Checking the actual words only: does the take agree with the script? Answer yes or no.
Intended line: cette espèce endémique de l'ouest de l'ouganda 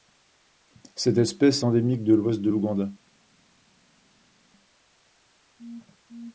yes